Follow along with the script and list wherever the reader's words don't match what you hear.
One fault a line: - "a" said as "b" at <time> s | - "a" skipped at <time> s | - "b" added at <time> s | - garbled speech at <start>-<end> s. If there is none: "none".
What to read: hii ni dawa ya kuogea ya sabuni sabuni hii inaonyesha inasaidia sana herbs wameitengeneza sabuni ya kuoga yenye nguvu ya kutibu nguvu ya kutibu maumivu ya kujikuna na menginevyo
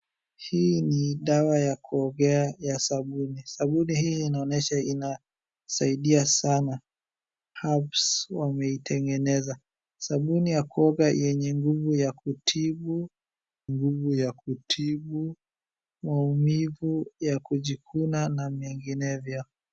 none